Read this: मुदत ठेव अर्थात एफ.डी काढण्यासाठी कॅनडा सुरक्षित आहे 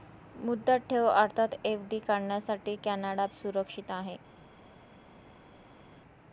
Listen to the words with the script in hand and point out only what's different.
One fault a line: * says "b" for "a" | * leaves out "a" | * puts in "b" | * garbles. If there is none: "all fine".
all fine